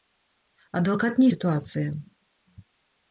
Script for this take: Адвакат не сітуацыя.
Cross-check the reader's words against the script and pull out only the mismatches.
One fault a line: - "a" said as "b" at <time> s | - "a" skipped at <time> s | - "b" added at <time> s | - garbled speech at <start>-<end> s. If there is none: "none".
none